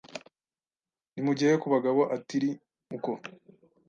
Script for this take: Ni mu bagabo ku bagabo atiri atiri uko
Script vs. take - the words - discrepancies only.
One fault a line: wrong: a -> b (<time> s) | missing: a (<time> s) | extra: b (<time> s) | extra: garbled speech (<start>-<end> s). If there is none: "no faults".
wrong: bagabo -> gihe (1.4 s)
missing: atiri (2.5 s)